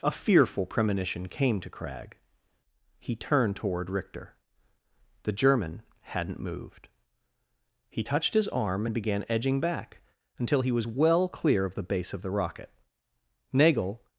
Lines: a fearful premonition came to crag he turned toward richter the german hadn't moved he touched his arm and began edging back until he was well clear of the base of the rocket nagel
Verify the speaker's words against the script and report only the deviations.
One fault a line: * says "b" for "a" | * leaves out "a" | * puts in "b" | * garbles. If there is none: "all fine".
all fine